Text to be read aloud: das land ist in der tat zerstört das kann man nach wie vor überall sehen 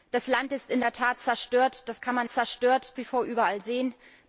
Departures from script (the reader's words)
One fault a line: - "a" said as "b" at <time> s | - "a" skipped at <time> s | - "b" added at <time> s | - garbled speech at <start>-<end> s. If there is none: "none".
- "nach" said as "zerstört" at 2.3 s